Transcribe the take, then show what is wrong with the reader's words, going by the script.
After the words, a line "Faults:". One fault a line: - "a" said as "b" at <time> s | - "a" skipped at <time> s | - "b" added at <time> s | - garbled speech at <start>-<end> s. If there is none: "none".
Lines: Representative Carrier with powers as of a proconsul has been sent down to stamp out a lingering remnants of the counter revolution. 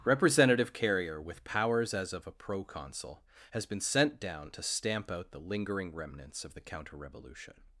Representative Carrier with powers as of a proconsul has been sent down to stamp out the lingering remnants of the counter revolution.
Faults:
- "a" said as "the" at 5.3 s